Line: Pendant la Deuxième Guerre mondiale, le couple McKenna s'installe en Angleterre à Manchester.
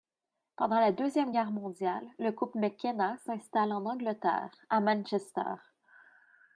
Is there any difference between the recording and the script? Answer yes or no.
no